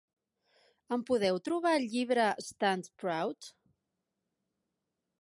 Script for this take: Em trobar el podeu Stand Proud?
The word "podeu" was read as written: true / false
false